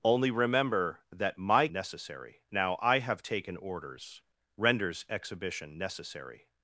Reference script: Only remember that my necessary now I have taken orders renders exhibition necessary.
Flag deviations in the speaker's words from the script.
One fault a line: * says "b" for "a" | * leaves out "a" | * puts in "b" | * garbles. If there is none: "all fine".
all fine